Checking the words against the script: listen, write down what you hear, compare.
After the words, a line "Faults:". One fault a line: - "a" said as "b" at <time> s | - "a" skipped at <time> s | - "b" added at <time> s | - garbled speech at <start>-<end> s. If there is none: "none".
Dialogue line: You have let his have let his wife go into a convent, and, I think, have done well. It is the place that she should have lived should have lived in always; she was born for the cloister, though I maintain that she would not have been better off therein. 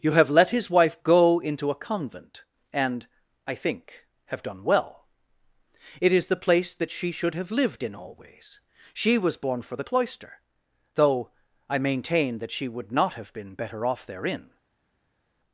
You have let his wife go into a convent, and, I think, have done well. It is the place that she should have lived in always; she was born for the cloister, though I maintain that she would not have been better off therein.
Faults:
- "have let his" skipped at 0.7 s
- "should have lived" skipped at 7.8 s